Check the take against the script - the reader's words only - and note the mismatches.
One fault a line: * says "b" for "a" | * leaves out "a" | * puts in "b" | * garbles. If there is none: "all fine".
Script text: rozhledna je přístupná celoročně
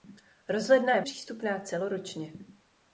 all fine